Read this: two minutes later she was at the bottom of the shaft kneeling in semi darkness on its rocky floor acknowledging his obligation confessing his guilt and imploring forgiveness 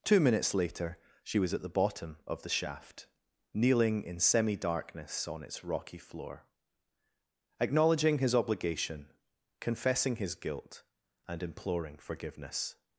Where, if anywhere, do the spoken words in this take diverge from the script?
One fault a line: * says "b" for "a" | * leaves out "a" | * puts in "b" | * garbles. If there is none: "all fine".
all fine